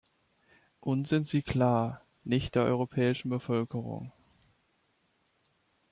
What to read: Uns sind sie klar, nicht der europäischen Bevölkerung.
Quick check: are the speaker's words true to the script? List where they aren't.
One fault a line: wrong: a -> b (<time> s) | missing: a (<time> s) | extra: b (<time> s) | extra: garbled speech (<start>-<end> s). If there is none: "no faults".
no faults